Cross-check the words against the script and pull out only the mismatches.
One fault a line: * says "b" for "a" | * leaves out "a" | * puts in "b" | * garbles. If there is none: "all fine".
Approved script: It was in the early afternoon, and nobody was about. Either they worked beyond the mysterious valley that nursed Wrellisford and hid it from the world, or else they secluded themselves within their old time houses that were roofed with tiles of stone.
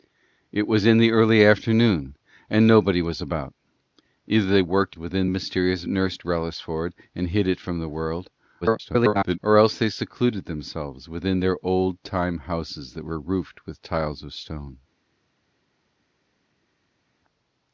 * says "within" for "beyond"
* leaves out "valley that"
* garbles